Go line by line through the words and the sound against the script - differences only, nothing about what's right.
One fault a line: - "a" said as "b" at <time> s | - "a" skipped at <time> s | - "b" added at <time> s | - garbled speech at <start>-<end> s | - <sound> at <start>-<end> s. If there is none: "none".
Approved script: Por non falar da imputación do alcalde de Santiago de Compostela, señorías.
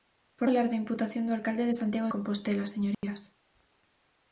- "non" skipped at 0.5 s
- "de" skipped at 2.1 s
- dropout at 2.9-3.0 s